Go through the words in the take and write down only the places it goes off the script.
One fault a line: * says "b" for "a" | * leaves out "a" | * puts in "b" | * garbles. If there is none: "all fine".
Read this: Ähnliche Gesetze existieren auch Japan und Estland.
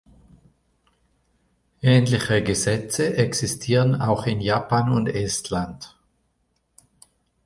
* puts in "in"